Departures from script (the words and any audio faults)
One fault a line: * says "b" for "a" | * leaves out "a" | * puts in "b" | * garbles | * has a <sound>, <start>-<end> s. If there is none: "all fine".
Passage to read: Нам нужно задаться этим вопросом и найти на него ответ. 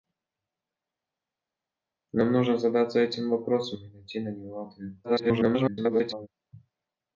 * garbles